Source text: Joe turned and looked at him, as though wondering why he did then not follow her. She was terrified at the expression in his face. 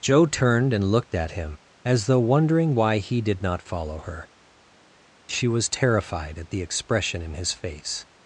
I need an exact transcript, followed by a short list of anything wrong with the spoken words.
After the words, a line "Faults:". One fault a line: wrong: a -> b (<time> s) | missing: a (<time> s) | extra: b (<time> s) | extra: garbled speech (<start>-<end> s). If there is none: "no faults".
Joe turned and looked at him, as though wondering why he did not follow her. She was terrified at the expression in his face.
Faults:
missing: then (3.4 s)